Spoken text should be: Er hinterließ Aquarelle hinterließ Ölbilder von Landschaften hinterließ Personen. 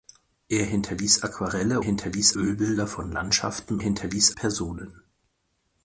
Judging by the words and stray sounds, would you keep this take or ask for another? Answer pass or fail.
pass